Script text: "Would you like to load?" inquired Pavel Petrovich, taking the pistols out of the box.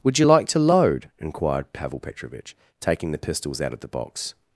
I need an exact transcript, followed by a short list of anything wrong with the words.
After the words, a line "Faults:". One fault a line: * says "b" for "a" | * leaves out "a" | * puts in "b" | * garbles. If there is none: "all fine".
"Would you like to load?" inquired Pavel Petrovich, taking the pistols out of the box.
Faults:
all fine